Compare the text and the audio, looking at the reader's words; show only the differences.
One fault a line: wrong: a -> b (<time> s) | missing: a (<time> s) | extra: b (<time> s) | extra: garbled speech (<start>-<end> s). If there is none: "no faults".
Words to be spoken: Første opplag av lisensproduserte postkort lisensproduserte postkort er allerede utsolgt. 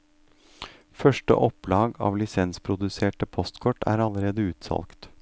missing: lisensproduserte postkort (3.9 s)